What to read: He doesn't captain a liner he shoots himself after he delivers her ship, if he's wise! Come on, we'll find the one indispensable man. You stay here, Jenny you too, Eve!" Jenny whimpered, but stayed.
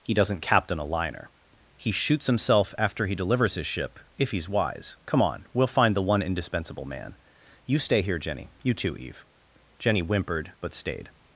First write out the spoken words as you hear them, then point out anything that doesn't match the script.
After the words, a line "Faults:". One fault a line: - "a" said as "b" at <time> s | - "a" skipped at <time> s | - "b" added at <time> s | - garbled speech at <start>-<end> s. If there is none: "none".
He doesn't captain a liner he shoots himself after he delivers his ship, if he's wise! Come on, we'll find the one indispensable man. You stay here, Jenny you too, Eve!" Jenny whimpered, but stayed.
Faults:
- "her" said as "his" at 3.5 s